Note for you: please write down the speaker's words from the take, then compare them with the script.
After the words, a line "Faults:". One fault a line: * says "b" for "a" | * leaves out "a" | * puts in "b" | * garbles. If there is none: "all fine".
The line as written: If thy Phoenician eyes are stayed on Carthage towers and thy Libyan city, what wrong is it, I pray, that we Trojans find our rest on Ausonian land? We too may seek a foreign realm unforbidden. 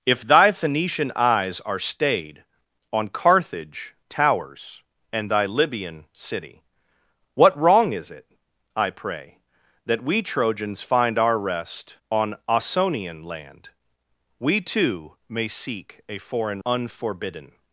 If thy Phoenician eyes are stayed on Carthage towers and thy Libyan city, what wrong is it, I pray, that we Trojans find our rest on Ausonian land? We too may seek a foreign unforbidden.
Faults:
* leaves out "realm"